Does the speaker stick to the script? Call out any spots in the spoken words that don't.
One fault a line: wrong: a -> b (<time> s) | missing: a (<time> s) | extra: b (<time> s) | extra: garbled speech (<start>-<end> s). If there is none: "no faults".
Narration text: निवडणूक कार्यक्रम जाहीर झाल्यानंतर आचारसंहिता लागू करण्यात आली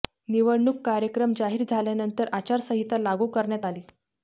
no faults